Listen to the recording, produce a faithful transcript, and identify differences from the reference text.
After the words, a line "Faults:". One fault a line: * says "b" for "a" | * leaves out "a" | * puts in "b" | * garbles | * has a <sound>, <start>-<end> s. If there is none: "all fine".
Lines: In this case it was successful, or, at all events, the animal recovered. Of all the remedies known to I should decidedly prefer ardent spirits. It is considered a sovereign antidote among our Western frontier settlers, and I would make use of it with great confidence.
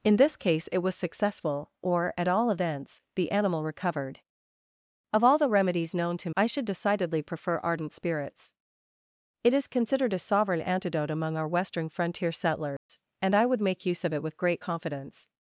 In this case it was successful, or, at all events, the animal recovered. Of all the remedies known to I should decidedly prefer ardent spirits. It is considered a sovereign antidote among our Western frontier settlers, and I would make use of it with great confidence.
Faults:
* has a dropout, 12.8-12.9 s